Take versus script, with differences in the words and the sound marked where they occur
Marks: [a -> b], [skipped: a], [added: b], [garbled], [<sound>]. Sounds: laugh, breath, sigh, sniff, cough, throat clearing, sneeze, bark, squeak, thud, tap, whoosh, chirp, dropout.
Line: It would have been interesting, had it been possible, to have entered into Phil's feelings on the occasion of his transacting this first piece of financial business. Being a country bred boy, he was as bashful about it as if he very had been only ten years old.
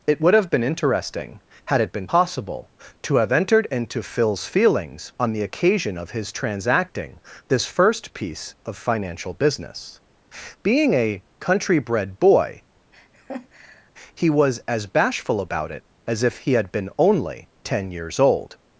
It would have been interesting, had it been possible, to have entered into Phil's feelings on the occasion of his transacting this first piece of financial business. Being a country bred boy, [laugh] he was as bashful about it as if he [skipped: very] had been only ten years old.